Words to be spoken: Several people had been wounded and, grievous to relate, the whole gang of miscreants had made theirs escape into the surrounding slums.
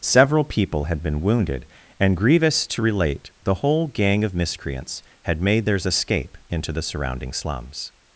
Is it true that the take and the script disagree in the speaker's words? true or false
false